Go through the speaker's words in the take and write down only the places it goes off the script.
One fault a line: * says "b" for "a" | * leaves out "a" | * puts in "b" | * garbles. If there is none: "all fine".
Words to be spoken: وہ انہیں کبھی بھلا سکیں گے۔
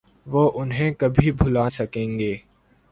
all fine